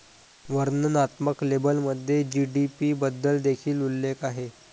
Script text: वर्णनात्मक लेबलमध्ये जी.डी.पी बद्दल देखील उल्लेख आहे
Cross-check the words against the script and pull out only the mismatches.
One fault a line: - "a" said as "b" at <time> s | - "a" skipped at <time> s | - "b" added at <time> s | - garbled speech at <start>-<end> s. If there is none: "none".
none